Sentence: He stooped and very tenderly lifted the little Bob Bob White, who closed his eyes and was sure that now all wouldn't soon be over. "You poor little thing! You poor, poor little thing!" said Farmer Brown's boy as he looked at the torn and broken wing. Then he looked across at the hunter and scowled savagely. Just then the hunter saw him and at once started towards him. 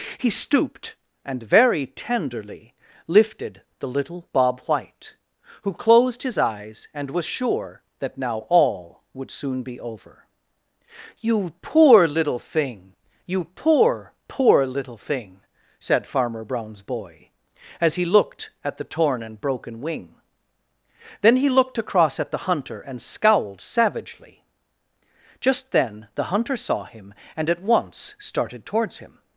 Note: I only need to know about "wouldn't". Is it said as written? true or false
false